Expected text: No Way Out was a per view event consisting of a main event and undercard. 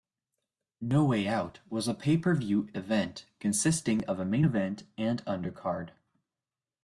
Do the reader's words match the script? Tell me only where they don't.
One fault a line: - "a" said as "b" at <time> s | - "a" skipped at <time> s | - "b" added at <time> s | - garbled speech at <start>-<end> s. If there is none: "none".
- "pay" added at 1.9 s